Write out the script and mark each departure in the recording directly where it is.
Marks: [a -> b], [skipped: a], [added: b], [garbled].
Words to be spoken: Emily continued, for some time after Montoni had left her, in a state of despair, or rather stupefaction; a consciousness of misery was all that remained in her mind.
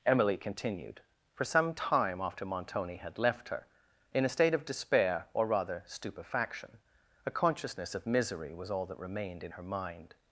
Emily continued, for some time after Montoni had left her, in a state of despair, or rather stupefaction; a consciousness of misery was all that remained in her mind.